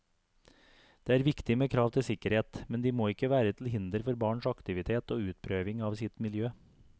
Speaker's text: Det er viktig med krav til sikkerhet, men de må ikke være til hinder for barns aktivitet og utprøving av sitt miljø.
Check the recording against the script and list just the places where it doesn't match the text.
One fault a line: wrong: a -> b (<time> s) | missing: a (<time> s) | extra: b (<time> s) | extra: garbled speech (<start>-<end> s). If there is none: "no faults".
no faults